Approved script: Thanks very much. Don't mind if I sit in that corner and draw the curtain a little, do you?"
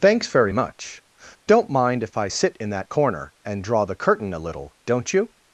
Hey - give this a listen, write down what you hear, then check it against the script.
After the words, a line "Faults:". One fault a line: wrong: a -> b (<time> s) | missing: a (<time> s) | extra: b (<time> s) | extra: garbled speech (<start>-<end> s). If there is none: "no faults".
Thanks very much. Don't mind if I sit in that corner and draw the curtain a little, don't you?"
Faults:
wrong: do -> don't (4.8 s)